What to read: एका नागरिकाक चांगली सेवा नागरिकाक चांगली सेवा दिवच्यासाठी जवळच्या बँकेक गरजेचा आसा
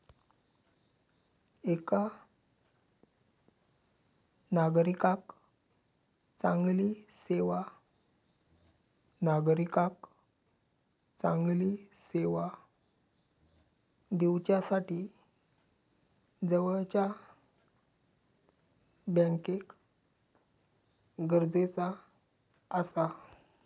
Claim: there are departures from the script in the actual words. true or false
false